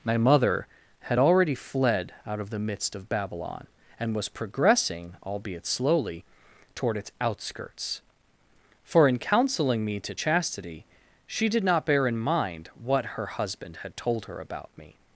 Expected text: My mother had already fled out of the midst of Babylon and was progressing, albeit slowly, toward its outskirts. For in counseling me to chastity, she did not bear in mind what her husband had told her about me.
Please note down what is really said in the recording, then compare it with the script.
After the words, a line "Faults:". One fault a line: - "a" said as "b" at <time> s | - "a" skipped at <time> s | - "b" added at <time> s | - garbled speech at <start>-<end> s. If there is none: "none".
My mother had already fled out of the midst of Babylon and was progressing, albeit slowly, toward its outskirts. For in counseling me to chastity, she did not bear in mind what her husband had told her about me.
Faults:
none